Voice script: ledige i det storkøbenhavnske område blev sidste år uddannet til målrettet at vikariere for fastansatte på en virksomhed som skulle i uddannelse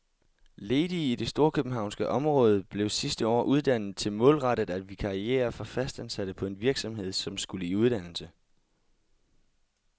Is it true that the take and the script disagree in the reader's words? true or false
false